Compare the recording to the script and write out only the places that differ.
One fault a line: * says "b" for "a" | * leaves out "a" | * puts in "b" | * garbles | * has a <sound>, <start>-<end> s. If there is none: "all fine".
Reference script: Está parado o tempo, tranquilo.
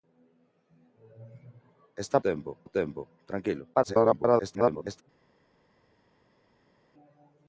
* says "tempo" for "parado"
* garbles